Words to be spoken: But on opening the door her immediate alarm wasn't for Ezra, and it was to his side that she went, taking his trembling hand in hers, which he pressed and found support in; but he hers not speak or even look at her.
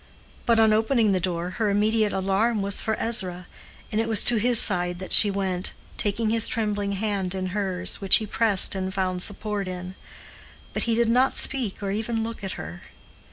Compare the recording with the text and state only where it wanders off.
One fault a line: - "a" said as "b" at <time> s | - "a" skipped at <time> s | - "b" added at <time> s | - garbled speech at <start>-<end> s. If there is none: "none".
- "wasn't" said as "was" at 2.6 s
- "hers" said as "did" at 11.0 s